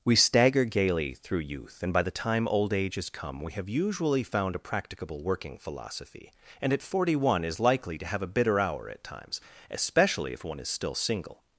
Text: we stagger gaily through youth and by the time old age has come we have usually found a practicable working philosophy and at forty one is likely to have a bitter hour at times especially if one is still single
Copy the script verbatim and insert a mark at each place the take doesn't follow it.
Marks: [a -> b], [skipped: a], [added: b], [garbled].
we stagger gaily through youth and by the time old age has come we have usually found a practicable working philosophy and at forty one is likely to have a bitter hour at times especially if one is still single